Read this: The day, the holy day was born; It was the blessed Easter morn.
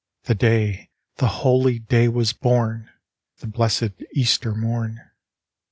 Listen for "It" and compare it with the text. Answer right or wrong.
wrong